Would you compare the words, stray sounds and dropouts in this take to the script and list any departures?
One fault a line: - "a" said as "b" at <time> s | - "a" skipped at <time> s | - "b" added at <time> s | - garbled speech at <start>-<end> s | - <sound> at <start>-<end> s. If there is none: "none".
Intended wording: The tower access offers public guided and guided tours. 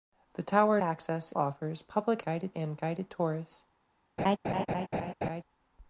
- laugh at 4.2-5.4 s